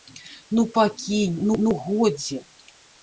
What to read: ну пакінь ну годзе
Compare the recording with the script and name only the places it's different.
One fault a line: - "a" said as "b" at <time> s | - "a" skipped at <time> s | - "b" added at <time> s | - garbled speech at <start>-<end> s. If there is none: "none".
- "ну" added at 1.6 s